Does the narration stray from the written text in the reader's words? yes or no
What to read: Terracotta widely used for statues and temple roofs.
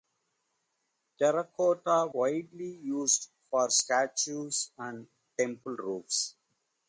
no